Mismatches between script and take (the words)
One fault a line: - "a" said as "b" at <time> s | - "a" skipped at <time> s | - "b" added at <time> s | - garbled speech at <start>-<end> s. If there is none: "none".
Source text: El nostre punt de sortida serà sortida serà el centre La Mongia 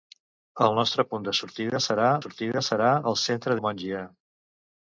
none